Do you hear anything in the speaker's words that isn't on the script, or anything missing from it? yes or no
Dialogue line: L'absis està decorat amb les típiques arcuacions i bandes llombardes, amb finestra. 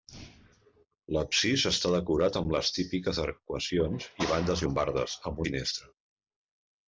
no